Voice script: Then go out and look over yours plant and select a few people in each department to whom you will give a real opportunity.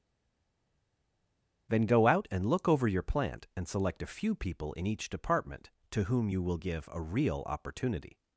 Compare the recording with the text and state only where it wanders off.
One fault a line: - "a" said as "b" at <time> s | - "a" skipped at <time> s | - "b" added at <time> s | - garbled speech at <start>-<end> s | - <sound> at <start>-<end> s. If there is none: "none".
- "yours" said as "your" at 2.9 s